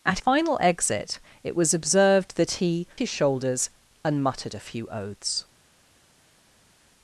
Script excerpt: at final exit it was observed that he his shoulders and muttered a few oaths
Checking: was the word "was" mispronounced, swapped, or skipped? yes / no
no